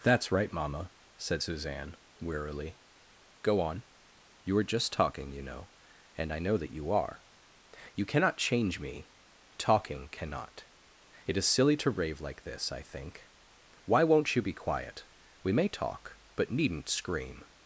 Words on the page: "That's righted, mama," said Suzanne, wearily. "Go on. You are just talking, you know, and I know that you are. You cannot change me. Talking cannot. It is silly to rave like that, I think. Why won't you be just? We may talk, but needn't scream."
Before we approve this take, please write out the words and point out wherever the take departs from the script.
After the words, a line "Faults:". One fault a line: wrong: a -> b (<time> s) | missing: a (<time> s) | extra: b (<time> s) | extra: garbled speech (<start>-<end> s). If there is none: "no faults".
"That's right, mama," said Suzanne, wearily. "Go on. You are just talking, you know, and I know that you are. You cannot change me. Talking cannot. It is silly to rave like this, I think. Why won't you be quiet? We may talk, but needn't scream."
Faults:
wrong: righted -> right (0.3 s)
wrong: that -> this (12.4 s)
wrong: just -> quiet (14.5 s)